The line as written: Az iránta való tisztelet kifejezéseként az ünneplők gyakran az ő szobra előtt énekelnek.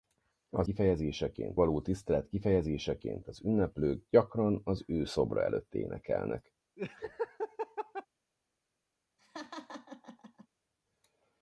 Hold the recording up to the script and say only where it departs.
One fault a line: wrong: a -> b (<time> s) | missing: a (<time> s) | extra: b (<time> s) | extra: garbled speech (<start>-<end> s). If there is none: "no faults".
wrong: iránta -> kifejezéseként (0.6 s)